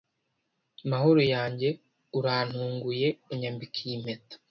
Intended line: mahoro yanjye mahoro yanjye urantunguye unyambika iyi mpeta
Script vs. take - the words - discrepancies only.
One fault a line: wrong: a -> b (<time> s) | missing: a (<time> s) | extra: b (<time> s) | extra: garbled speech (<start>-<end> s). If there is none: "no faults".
missing: mahoro yanjye (1.7 s)